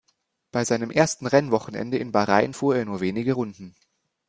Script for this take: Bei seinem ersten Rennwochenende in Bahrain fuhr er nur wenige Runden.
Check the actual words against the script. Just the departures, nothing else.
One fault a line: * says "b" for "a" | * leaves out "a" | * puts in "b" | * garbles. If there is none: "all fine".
all fine